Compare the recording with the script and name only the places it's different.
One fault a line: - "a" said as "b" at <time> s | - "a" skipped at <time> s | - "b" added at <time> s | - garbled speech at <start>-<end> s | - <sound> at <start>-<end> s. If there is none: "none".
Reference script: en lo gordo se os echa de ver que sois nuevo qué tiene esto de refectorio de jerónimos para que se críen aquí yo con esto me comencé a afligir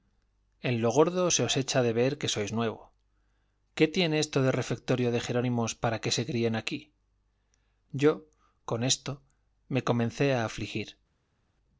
none